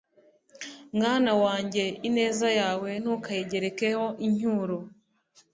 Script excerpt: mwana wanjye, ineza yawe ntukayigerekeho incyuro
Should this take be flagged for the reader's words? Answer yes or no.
no